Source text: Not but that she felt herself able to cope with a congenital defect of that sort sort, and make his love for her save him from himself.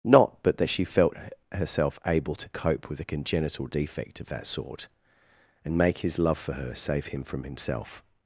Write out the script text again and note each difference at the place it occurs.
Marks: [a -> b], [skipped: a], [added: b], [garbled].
Not but that she felt herself able to cope with a congenital defect of that sort [skipped: sort,] and make his love for her save him from himself.